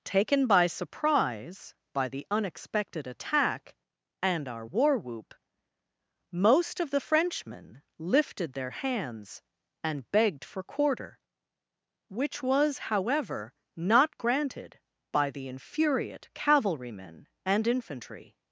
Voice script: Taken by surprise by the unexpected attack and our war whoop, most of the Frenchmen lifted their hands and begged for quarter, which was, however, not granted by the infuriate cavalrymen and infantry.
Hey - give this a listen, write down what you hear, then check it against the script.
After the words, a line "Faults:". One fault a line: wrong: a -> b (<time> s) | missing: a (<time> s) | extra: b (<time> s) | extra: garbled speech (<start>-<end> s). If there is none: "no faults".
Taken by surprise by the unexpected attack and our war whoop, most of the Frenchmen lifted their hands and begged for quarter, which was, however, not granted by the infuriate cavalrymen and infantry.
Faults:
no faults